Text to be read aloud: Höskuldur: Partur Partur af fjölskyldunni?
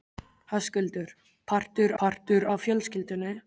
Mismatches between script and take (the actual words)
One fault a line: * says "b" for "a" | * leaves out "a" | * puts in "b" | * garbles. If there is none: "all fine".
all fine